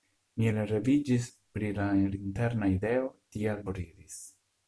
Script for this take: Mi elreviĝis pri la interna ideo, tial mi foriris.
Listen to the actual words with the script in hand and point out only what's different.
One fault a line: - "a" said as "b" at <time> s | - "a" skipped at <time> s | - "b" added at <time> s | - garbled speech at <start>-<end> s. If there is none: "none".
- "mi" skipped at 3.7 s